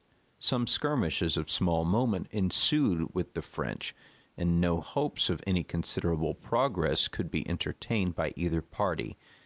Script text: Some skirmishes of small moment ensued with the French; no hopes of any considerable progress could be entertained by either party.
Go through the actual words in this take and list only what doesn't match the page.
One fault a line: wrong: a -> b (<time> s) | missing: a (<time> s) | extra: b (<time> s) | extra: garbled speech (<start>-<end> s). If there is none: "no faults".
extra: and (4.3 s)